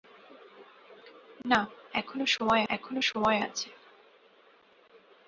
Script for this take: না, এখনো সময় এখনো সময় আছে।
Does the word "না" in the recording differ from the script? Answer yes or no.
no